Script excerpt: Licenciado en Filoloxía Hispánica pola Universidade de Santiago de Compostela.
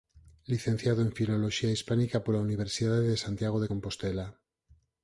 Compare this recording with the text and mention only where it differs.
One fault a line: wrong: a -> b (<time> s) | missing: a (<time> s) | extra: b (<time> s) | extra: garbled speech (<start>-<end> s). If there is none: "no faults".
no faults